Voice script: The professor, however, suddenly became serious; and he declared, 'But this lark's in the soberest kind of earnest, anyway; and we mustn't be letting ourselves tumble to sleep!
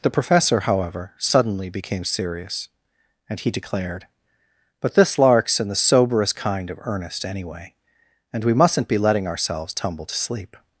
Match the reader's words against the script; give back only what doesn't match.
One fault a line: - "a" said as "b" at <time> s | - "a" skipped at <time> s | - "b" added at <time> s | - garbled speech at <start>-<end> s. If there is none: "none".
none